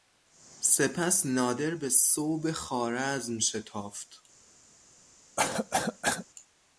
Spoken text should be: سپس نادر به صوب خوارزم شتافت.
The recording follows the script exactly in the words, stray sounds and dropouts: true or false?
false